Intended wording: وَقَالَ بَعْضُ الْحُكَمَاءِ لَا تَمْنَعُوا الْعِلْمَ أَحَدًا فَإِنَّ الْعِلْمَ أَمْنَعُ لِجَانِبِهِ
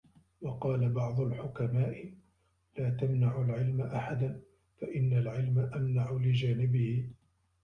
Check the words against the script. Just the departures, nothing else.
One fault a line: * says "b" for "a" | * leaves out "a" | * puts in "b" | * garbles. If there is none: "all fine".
all fine